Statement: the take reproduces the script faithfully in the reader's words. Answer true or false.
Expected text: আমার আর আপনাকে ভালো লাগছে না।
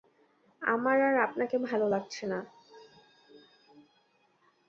true